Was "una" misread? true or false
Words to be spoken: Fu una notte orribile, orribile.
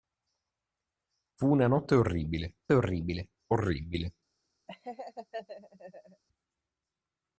false